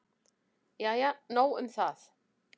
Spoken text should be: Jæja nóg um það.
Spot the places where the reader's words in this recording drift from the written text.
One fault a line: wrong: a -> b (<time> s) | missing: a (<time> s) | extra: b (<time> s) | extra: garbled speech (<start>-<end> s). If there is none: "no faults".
no faults